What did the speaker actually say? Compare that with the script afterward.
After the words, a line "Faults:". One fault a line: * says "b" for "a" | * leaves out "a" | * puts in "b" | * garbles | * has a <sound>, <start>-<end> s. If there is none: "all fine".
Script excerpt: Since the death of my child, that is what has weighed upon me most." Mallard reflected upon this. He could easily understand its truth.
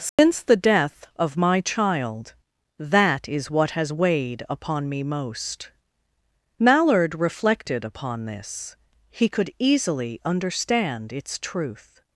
Since the death of my child, that is what has weighed upon me most." Mallard reflected upon this. He could easily understand its truth.
Faults:
* has a dropout, 0.1-0.2 s